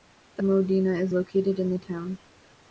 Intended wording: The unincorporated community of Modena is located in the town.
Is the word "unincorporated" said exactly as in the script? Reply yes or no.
no